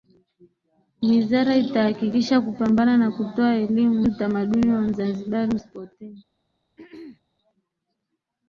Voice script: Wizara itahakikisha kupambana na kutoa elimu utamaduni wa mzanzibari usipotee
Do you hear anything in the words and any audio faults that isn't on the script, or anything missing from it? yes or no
yes